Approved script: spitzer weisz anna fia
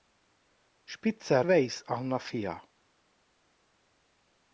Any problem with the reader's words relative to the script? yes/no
no